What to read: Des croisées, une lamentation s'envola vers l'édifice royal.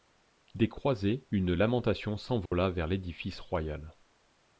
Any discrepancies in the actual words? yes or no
no